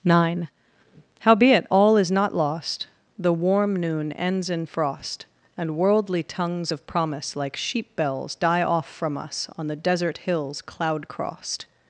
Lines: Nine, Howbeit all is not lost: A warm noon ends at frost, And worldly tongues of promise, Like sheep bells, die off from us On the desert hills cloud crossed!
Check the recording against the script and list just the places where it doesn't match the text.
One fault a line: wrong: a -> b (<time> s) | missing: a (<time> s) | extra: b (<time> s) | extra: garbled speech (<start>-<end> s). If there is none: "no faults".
wrong: A -> The (3.2 s)
wrong: at -> in (4.5 s)